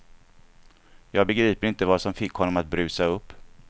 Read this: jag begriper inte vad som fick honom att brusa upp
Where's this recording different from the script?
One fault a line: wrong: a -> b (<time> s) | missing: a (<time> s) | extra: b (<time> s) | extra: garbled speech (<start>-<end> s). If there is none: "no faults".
no faults